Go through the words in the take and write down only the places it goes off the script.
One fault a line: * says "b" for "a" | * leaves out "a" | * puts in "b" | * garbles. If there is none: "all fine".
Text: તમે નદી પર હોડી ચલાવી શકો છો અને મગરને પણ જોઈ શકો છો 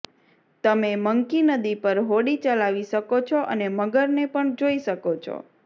* puts in "મંકી"